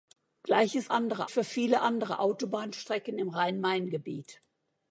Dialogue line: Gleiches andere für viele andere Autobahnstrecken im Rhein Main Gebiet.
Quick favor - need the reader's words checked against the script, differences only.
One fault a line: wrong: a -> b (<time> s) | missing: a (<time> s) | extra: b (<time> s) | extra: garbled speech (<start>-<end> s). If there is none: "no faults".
no faults